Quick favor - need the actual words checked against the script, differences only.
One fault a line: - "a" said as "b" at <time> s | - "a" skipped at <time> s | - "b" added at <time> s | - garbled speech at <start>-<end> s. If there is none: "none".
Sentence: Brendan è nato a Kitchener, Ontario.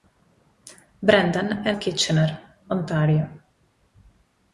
- "nato" skipped at 1.7 s